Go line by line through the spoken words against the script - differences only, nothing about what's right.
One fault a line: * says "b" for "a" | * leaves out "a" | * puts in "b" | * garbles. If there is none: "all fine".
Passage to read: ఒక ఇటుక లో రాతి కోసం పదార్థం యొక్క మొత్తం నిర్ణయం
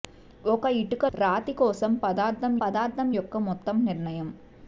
* leaves out "లో"
* puts in "పదార్థం"